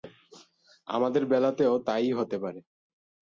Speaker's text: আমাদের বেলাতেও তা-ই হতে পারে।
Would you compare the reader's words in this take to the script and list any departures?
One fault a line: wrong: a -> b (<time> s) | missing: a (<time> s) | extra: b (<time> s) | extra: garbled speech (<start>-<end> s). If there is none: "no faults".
no faults